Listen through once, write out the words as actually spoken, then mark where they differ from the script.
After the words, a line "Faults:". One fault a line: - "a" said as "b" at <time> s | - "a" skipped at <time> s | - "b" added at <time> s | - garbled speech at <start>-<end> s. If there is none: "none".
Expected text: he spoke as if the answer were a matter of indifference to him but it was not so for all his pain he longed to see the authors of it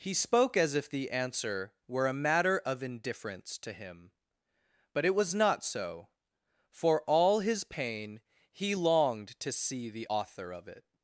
he spoke as if the answer were a matter of indifference to him but it was not so for all his pain he longed to see the author of it
Faults:
- "authors" said as "author" at 10.1 s